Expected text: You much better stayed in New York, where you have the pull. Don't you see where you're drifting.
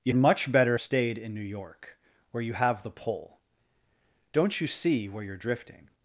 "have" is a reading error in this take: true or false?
false